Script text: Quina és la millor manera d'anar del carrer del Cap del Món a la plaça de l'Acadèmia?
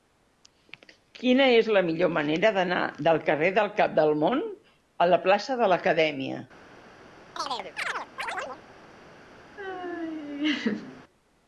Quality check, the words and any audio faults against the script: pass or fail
fail